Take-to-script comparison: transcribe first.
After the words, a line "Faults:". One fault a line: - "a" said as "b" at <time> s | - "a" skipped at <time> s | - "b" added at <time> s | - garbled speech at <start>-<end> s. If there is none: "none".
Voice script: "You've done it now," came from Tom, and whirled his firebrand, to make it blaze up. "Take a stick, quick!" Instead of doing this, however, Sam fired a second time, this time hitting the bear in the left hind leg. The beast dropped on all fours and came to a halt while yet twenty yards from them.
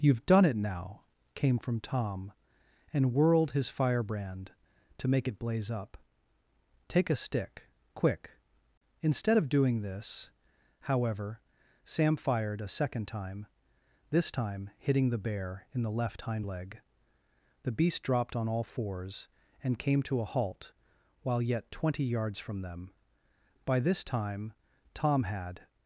"You've done it now," came from Tom, and whirled his firebrand, to make it blaze up. "Take a stick, quick!" Instead of doing this, however, Sam fired a second time, this time hitting the bear in the left hind leg. The beast dropped on all fours and came to a halt while yet twenty yards from them. By this time Tom had
Faults:
- "By this time Tom had" added at 23.6 s